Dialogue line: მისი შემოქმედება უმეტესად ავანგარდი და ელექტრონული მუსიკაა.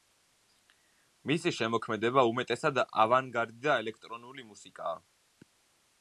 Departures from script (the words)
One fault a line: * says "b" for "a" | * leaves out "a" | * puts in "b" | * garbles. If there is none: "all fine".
all fine